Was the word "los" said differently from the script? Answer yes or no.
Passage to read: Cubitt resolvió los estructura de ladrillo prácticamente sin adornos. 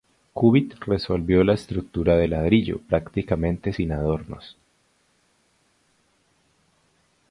yes